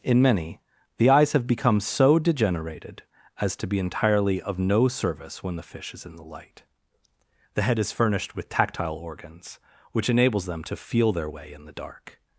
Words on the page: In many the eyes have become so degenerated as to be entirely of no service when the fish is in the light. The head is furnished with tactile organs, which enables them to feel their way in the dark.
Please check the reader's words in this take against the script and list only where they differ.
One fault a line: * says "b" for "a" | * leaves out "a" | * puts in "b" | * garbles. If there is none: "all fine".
all fine